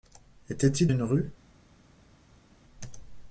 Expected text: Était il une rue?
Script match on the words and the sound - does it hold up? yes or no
yes